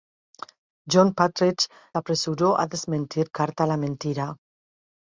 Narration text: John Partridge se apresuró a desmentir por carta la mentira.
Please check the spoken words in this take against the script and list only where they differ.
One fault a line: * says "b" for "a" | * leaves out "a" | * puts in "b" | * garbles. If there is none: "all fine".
* leaves out "se"
* leaves out "por"